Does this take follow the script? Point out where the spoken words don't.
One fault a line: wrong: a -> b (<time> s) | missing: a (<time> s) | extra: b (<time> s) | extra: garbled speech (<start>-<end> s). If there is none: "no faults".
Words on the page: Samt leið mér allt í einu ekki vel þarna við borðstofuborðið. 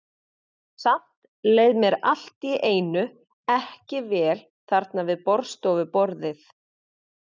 no faults